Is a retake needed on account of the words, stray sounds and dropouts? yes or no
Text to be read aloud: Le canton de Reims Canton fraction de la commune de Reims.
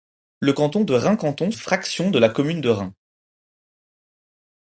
no